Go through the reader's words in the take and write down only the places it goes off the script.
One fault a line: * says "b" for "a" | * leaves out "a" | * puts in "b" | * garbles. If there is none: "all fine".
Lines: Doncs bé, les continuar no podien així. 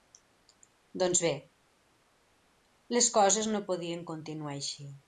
* says "coses" for "continuar"
* puts in "continuar"